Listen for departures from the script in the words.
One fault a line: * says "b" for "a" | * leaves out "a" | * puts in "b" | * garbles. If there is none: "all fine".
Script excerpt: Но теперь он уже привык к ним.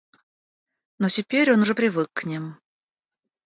all fine